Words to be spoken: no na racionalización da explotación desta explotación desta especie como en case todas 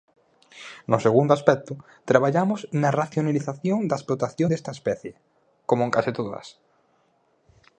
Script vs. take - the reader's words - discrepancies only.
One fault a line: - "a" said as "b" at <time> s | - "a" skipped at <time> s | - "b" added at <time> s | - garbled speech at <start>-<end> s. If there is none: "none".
- "segundo aspecto traballamos" added at 1.1 s
- "explotación desta" skipped at 4.7 s